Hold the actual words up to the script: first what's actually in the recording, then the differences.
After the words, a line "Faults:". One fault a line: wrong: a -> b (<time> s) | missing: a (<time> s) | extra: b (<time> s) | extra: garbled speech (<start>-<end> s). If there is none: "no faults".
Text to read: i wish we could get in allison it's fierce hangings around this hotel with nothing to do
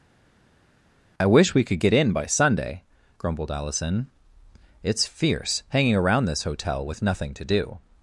i wish we could get in by sunday grumbled allison it's fierce hanging around this hotel with nothing to do
Faults:
extra: by sunday grumbled (2.1 s)
wrong: hangings -> hanging (5.7 s)